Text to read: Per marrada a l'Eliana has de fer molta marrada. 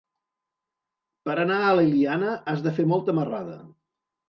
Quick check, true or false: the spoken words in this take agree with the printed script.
false